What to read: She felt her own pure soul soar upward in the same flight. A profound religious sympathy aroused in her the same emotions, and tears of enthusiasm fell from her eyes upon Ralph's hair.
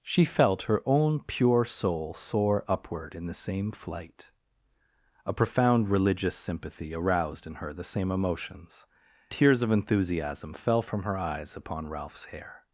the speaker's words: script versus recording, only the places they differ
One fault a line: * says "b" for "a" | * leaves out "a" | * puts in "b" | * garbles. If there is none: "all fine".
* leaves out "and"